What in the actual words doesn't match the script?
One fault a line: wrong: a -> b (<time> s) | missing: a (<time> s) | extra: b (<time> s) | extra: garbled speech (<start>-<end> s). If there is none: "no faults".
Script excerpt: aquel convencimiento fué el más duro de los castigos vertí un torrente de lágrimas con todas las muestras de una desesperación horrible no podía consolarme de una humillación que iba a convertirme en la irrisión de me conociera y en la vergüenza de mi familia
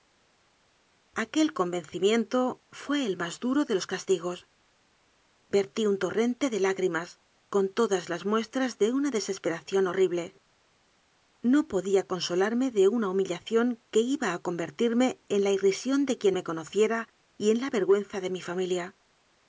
extra: quien (16.2 s)